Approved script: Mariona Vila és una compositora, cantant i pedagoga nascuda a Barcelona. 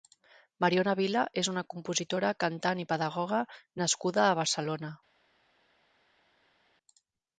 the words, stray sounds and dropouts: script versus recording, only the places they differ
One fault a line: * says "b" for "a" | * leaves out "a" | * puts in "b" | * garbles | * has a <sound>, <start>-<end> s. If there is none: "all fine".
all fine